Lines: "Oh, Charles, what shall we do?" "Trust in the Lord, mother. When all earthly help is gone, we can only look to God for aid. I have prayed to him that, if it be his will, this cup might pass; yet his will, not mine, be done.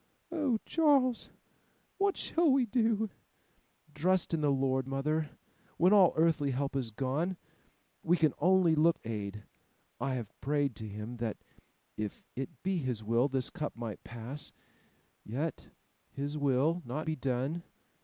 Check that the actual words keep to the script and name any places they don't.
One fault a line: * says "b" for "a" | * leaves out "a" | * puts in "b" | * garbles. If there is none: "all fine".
* leaves out "to God for"
* leaves out "mine"